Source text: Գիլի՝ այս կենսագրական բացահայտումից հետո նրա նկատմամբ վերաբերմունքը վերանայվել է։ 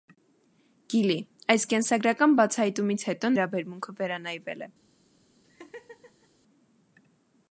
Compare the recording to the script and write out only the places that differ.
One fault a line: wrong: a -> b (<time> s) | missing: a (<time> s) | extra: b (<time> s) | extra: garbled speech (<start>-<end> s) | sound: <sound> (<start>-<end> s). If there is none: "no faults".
missing: նրա նկատմամբ (3.3 s)
sound: laugh (5.4-6.3 s)